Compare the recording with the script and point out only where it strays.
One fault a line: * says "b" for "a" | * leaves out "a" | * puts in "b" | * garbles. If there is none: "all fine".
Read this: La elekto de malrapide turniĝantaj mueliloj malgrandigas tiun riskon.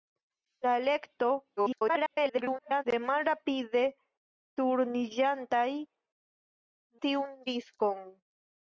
* garbles
* leaves out "mueliloj malgrandigas"